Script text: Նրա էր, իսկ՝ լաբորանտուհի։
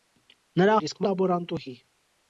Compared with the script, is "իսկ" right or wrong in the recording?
right